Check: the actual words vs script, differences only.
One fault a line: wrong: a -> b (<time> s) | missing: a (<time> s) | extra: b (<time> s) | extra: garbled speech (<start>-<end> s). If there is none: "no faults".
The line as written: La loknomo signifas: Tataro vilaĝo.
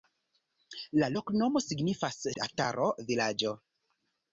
no faults